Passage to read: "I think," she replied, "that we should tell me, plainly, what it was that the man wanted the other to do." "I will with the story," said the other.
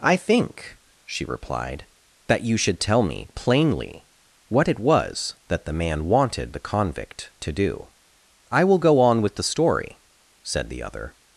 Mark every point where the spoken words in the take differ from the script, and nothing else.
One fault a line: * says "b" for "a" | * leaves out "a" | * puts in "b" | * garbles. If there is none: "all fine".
* says "you" for "we"
* says "convict" for "other"
* puts in "go on"